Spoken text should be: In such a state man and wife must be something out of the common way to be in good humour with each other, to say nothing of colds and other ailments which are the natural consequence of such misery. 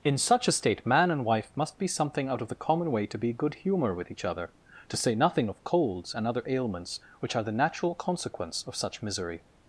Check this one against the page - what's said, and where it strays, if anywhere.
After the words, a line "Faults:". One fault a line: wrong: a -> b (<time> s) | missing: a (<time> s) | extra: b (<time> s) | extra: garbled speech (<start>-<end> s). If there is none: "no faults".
In such a state man and wife must be something out of the common way to be good humour with each other, to say nothing of colds and other ailments which are the natural consequence of such misery.
Faults:
missing: in (3.3 s)